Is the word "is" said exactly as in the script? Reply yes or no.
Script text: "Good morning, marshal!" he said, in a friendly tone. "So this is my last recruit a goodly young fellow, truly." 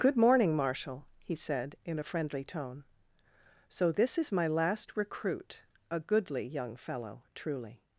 yes